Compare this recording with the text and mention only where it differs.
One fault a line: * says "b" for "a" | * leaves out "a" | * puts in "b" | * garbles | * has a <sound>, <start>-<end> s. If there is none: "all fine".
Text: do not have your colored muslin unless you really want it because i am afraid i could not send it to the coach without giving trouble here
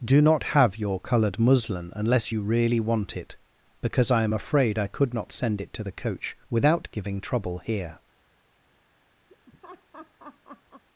* has a laugh, 9.3-10.8 s